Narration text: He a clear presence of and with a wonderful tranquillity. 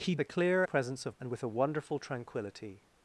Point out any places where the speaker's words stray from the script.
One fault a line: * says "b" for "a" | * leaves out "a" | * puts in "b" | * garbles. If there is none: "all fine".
all fine